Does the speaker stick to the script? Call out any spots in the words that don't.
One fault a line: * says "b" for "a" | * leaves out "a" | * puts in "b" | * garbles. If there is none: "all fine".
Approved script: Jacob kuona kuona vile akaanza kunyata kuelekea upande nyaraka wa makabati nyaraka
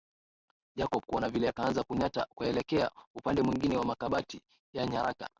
* leaves out "kuona"
* says "mwingine" for "nyaraka"
* puts in "ya"